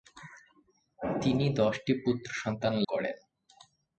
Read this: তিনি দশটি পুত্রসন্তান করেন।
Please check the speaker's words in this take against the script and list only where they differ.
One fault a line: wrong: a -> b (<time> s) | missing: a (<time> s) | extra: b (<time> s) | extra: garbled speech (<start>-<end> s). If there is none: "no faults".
no faults